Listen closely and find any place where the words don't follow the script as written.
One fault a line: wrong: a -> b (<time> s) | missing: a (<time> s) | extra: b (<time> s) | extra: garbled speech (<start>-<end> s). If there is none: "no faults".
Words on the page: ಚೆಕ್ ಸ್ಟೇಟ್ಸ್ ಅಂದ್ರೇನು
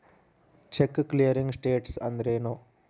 extra: ಕ್ಲಿಯರಿಂಗ್ (1.1 s)